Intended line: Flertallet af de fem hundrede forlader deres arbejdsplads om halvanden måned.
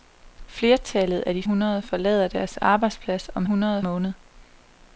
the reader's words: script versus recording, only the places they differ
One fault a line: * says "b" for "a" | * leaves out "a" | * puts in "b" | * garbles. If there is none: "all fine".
* leaves out "fem"
* says "hundrede" for "halvanden"